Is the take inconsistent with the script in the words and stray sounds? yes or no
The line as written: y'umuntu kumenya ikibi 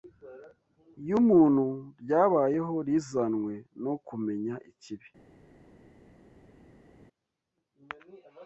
yes